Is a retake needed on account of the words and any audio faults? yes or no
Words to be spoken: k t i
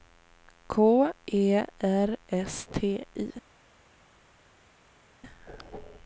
yes